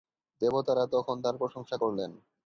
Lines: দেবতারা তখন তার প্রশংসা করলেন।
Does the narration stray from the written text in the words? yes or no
no